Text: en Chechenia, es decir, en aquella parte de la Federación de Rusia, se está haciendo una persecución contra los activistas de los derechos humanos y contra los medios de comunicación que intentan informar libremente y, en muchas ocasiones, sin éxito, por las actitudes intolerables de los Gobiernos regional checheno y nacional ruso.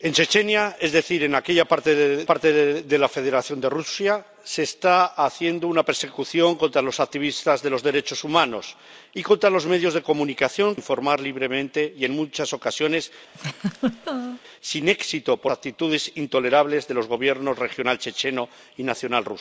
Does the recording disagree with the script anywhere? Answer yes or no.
yes